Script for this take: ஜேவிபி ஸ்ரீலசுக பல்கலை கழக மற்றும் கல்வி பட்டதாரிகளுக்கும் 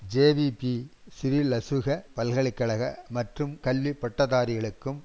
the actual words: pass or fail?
pass